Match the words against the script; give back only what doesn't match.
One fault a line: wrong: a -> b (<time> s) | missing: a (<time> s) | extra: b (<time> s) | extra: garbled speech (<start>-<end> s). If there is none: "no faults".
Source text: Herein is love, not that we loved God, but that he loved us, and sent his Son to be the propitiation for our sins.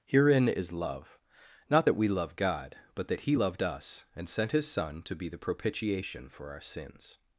wrong: loved -> love (2.1 s)